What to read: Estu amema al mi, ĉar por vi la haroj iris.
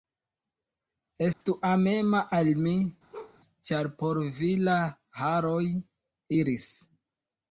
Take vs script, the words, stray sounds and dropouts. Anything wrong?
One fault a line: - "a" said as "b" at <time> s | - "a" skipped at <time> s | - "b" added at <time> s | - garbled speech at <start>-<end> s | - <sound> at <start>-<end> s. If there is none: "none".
- dropout at 1.3-1.4 s
- bark at 3.1-3.4 s